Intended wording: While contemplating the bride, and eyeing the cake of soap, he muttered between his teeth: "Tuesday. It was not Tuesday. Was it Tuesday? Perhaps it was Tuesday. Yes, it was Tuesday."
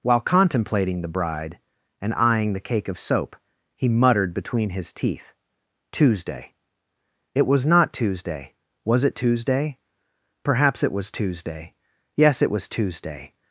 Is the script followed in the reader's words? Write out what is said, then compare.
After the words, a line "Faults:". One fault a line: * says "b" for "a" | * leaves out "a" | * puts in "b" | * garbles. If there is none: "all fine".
While contemplating the bride, and eyeing the cake of soap, he muttered between his teeth: "Tuesday. It was not Tuesday. Was it Tuesday? Perhaps it was Tuesday. Yes, it was Tuesday."
Faults:
all fine